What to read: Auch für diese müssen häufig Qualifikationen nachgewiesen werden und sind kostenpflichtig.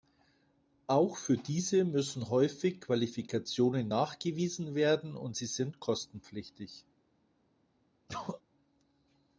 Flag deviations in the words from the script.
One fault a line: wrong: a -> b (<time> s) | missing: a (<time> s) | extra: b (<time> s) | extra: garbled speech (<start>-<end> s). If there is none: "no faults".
extra: sie (5.3 s)